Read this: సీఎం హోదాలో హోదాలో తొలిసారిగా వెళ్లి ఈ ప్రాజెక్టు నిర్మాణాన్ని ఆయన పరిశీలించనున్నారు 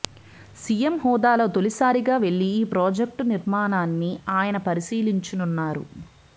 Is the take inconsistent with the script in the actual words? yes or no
yes